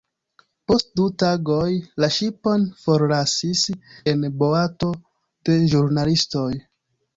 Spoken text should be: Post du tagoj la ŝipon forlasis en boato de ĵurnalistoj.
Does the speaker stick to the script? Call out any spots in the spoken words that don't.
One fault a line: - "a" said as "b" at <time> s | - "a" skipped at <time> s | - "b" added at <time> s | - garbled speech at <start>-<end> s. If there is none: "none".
none